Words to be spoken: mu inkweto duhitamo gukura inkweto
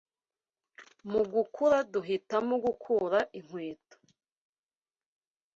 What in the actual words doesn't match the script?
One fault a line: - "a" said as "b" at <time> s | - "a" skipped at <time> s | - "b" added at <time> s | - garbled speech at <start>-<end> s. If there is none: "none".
- "inkweto" said as "gukura" at 1.3 s